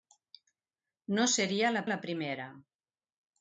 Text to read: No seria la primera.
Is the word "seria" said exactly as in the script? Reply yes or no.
yes